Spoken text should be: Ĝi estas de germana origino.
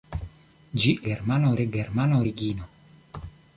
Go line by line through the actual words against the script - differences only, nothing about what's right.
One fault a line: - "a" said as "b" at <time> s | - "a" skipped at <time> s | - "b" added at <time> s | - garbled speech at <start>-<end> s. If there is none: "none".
- "estas" said as "germana" at 1.1 s